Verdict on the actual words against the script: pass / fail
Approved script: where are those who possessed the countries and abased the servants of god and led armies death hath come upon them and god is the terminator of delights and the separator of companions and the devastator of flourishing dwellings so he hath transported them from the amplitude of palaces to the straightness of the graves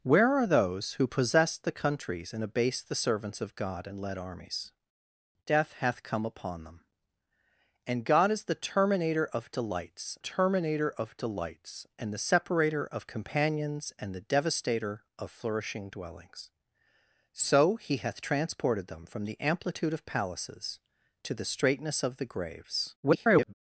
fail